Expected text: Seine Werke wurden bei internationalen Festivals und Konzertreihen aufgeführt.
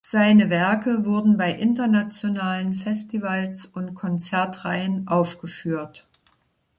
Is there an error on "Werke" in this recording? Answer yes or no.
no